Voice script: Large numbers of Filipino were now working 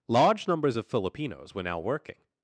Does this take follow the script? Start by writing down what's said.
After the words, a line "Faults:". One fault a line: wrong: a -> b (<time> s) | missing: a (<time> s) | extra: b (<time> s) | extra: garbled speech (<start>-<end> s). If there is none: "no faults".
Large numbers of Filipinos were now working
Faults:
wrong: Filipino -> Filipinos (0.9 s)